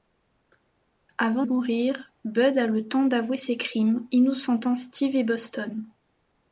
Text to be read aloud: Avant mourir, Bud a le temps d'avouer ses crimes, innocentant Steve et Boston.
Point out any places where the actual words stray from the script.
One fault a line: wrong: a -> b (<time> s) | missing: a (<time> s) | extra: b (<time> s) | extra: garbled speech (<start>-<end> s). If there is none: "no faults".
no faults